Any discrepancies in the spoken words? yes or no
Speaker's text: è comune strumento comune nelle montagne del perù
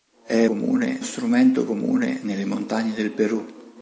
no